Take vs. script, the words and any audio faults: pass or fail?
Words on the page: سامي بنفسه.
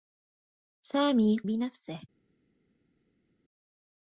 pass